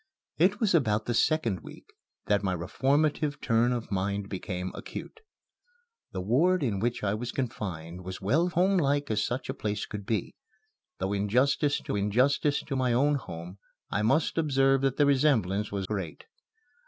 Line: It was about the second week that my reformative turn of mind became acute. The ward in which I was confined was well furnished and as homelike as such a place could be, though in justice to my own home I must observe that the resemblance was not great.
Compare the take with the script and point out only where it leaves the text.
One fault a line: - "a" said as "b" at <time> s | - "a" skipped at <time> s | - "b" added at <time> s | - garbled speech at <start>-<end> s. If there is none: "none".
- "furnished and as" skipped at 8.5 s
- "in justice to" added at 12.0 s
- "not" skipped at 15.9 s